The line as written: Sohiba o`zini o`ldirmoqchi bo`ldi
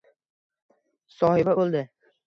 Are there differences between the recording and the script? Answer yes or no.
yes